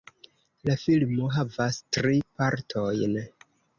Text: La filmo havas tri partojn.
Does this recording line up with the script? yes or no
yes